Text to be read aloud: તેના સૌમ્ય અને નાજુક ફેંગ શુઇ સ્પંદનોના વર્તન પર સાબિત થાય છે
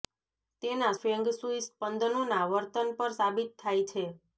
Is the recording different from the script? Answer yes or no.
yes